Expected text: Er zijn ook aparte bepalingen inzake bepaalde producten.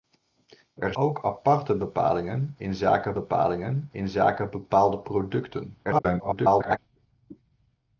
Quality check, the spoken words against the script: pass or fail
fail